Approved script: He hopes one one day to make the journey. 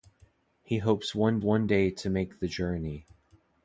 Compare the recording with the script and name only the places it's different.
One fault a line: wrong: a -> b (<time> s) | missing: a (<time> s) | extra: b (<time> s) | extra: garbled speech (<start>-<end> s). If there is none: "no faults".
no faults